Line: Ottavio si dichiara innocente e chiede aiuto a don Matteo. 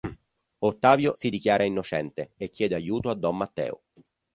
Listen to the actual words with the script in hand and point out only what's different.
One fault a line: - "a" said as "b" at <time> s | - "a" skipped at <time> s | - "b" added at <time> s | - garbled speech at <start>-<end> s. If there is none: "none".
none